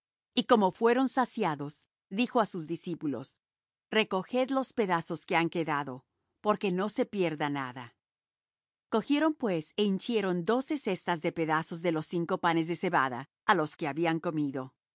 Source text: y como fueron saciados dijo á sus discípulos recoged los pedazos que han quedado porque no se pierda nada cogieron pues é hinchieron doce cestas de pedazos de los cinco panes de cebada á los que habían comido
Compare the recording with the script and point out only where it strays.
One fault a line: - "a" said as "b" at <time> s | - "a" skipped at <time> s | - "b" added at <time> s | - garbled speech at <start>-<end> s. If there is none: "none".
none